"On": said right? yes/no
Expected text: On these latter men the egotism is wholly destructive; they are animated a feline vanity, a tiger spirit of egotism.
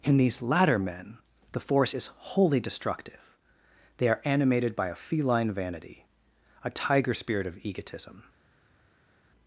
no